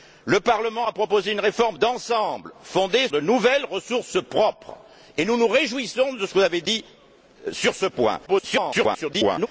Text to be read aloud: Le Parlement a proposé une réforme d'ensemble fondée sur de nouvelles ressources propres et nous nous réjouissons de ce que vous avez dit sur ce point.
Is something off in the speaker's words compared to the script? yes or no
yes